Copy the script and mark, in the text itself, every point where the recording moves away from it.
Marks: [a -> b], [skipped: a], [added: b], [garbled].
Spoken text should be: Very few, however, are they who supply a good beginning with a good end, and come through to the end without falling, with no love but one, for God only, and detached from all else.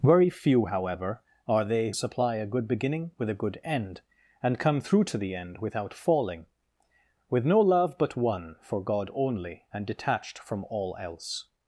Very few, however, are they [skipped: who] supply a good beginning with a good end, and come through to the end without falling, with no love but one, for God only, and detached from all else.